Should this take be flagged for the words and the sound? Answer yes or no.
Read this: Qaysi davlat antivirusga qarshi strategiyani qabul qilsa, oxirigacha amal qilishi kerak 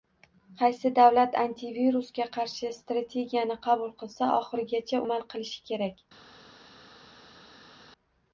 no